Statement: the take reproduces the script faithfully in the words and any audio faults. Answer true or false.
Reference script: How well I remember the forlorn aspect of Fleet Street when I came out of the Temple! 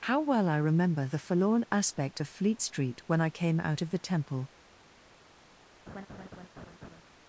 false